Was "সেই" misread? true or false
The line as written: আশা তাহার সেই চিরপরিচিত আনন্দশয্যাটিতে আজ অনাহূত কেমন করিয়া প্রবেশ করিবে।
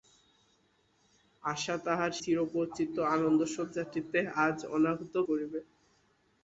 true